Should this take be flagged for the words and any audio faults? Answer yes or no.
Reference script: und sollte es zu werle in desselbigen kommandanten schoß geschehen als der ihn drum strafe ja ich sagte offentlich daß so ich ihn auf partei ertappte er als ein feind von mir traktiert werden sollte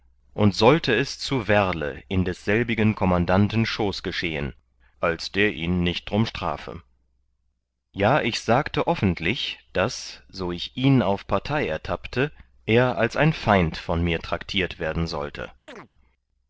yes